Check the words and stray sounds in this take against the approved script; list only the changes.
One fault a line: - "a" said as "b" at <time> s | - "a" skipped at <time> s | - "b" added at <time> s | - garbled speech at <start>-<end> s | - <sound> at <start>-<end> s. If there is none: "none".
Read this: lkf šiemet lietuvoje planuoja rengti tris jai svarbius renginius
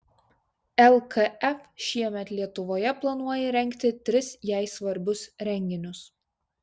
none